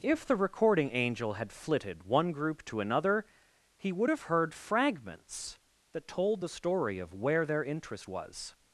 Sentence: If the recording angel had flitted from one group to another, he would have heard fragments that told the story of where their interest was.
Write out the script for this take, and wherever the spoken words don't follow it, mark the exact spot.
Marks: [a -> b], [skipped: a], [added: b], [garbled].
If the recording angel had flitted [skipped: from] one group to another, he would have heard fragments that told the story of where their interest was.